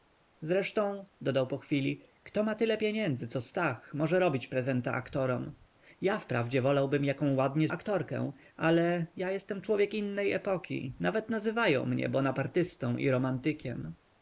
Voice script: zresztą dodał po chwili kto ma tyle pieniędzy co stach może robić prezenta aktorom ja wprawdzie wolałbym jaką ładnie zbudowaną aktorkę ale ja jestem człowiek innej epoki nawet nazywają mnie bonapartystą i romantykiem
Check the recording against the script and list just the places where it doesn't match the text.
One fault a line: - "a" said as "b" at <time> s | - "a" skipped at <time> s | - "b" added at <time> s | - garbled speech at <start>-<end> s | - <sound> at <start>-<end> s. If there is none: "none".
- "zbudowaną" skipped at 7.7 s